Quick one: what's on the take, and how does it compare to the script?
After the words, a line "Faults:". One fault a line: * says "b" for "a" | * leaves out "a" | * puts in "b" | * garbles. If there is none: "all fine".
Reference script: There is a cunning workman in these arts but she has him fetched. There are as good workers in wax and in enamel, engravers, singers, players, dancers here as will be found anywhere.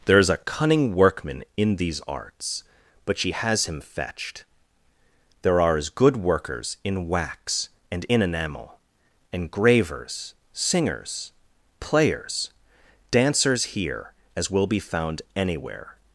There is a cunning workman in these arts but she has him fetched. There are as good workers in wax and in enamel, engravers, singers, players, dancers here as will be found anywhere.
Faults:
all fine